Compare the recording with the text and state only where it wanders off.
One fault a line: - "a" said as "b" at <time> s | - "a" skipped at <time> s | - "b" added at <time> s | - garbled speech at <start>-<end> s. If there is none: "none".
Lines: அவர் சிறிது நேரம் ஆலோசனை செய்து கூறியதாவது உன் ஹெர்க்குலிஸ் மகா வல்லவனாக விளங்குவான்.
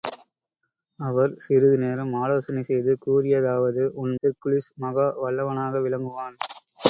none